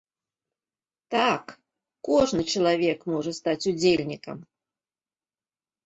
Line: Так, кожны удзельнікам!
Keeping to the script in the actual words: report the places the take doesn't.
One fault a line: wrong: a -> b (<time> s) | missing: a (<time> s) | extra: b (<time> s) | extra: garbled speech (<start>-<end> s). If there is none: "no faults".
extra: чалавек можа стаць (2.5 s)